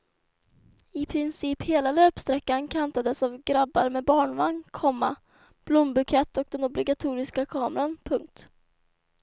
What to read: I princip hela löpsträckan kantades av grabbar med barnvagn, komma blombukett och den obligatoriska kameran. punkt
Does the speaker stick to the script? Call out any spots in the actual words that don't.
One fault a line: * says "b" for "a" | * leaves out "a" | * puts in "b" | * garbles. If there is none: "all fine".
all fine